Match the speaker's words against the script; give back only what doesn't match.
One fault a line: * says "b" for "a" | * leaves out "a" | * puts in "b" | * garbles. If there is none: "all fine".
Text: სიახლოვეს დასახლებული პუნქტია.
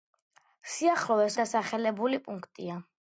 all fine